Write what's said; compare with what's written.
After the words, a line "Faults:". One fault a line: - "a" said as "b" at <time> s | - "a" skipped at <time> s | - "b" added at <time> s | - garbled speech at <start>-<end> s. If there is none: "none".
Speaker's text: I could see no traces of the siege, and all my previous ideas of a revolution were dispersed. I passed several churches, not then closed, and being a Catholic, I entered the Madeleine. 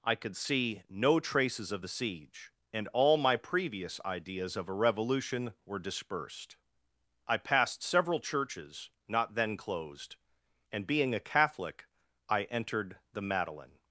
I could see no traces of the siege, and all my previous ideas of a revolution were dispersed. I passed several churches, not then closed, and being a Catholic, I entered the Madeleine.
Faults:
none